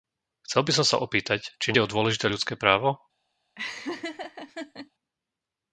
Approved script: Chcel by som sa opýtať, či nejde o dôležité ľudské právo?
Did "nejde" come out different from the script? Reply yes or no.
yes